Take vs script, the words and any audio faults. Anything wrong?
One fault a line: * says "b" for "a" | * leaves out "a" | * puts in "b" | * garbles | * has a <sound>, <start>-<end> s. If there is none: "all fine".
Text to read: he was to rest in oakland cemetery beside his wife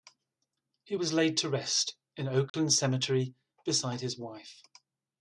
* puts in "laid"
* has a dropout, 2.5-2.5 s